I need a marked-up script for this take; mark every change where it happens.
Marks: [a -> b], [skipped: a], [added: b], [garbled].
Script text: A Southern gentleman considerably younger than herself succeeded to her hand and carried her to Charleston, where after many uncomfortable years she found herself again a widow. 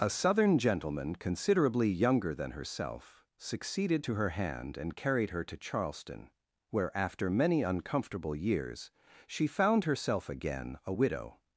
A Southern gentleman considerably younger than herself succeeded to her hand and carried her to Charleston, where after many uncomfortable years she found herself again a widow.